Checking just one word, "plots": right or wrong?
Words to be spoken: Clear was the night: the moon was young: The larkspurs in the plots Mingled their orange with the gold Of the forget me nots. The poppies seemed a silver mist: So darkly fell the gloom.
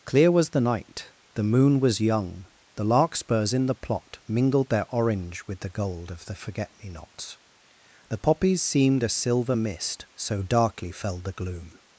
wrong